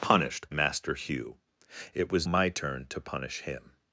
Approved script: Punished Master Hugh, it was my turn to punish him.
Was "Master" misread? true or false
false